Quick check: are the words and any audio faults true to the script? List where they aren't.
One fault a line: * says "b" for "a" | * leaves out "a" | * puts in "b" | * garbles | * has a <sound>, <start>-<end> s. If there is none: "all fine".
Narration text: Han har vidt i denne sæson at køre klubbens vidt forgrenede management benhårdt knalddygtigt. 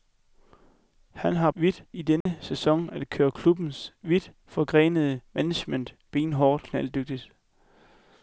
* has a dropout, 2.2-2.3 s